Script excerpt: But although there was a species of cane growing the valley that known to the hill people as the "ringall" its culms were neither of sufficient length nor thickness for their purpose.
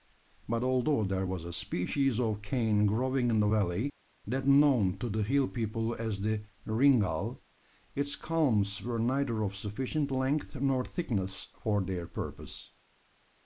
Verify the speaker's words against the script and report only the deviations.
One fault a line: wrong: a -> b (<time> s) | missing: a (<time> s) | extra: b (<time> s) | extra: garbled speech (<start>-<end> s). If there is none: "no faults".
extra: in (3.3 s)